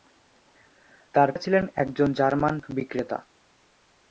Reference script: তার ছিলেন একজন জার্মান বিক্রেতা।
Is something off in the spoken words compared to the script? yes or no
no